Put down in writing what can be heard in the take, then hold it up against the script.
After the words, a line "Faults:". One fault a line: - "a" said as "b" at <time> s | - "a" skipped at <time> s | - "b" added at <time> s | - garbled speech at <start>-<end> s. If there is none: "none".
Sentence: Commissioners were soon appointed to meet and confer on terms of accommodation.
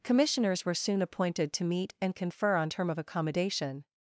Commissioners were soon appointed to meet and confer on term of accommodation.
Faults:
- "terms" said as "term" at 2.7 s